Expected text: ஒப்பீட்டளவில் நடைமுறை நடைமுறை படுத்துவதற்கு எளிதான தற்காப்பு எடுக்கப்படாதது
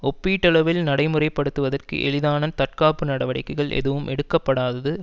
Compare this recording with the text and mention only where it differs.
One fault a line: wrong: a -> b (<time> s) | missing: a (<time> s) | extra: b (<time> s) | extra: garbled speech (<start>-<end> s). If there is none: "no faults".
missing: நடைமுறை (1.3 s)
extra: நடவடிக்கைகள் எதுவும் (3.0 s)